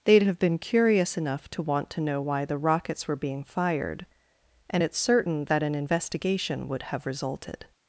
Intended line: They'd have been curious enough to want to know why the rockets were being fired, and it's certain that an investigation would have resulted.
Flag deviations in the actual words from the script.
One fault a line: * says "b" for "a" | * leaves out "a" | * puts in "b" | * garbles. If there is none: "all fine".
all fine